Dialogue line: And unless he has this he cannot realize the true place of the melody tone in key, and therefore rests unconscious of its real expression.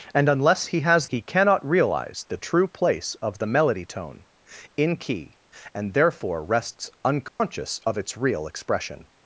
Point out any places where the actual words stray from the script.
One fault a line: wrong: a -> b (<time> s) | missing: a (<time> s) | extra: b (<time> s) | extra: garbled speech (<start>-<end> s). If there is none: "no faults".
missing: this (1.1 s)